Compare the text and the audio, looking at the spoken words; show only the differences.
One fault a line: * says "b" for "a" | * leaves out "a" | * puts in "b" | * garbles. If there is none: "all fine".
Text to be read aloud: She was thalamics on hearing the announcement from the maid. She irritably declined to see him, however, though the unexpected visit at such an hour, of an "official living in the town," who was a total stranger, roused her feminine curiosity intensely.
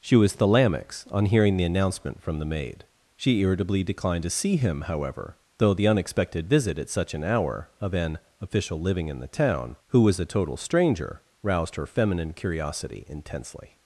all fine